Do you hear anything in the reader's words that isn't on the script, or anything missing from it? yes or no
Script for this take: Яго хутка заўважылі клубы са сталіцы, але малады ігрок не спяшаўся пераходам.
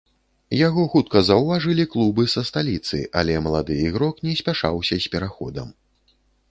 yes